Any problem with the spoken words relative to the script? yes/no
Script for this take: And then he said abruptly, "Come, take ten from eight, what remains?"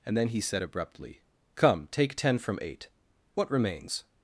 no